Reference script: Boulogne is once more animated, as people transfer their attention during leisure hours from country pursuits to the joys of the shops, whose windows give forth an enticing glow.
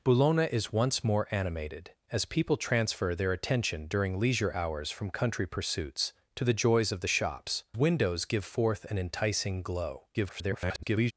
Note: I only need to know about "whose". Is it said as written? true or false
false